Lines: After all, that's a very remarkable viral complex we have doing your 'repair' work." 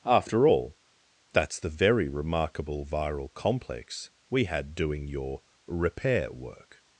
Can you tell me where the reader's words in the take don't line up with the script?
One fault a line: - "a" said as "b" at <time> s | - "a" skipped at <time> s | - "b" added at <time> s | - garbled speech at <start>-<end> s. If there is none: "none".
- "a" said as "the" at 1.6 s
- "have" said as "had" at 4.4 s